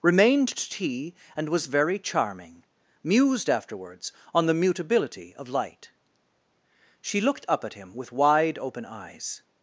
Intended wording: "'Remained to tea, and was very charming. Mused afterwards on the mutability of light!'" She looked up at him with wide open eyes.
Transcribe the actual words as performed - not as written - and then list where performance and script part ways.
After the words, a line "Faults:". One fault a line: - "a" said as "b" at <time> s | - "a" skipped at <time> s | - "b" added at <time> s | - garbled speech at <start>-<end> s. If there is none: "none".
"'Remained to tea, and was very charming. Mused afterwards on the mutability of light!'" She looked up at him with wide open eyes.
Faults:
none